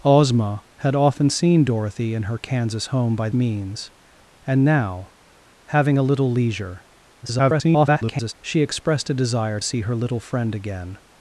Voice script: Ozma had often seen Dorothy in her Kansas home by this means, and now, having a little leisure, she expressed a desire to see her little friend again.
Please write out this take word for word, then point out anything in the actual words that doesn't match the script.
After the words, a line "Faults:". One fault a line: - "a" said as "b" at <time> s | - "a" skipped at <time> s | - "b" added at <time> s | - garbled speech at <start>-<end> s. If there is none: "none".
Ozma had often seen Dorothy in her Kansas home by means, and now, having a little leisure, [garbled] she expressed a desire see her little friend again.
Faults:
- "this" skipped at 3.3 s
- garbled speech at 7.2-8.3 s
- "to" skipped at 9.6 s